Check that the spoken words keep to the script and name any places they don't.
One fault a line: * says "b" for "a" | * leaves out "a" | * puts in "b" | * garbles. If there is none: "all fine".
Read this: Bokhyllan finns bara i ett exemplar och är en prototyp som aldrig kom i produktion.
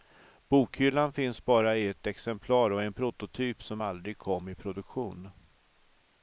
all fine